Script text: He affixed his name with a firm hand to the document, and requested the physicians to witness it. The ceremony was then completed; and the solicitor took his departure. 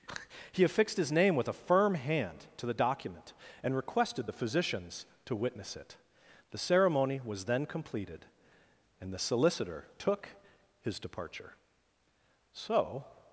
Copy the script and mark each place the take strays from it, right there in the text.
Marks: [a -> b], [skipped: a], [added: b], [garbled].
He affixed his name with a firm hand to the document, and requested the physicians to witness it. The ceremony was then completed; and the solicitor took his departure. [added: So]